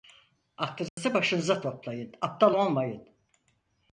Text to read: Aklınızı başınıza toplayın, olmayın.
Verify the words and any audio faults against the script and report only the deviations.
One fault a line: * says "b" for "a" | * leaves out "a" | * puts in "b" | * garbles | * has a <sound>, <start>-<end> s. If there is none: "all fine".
* has a dropout, 0.9-1.0 s
* puts in "aptal"